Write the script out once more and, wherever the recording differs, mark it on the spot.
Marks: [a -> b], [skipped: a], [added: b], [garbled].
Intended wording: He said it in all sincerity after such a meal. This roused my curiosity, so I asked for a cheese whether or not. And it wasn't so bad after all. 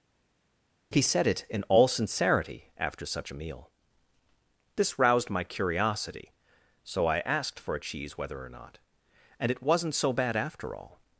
He said it in all sincerity after such a meal. This roused my curiosity, so I asked for a cheese whether or not. And it wasn't so bad after all.